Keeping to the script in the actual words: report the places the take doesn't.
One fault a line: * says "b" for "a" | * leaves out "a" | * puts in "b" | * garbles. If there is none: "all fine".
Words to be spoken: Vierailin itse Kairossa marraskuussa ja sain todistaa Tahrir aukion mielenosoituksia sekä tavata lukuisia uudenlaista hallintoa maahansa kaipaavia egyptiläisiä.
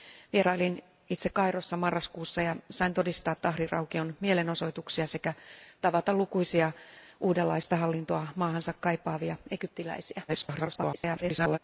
* garbles